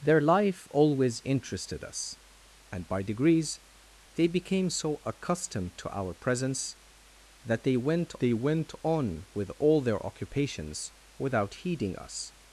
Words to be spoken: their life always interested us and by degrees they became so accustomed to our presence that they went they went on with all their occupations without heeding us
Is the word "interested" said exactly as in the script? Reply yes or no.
yes